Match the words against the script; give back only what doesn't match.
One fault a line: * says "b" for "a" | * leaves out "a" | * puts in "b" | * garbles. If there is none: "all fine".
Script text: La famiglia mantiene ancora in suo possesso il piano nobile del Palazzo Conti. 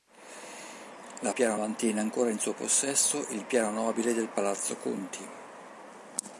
* says "piano" for "famiglia"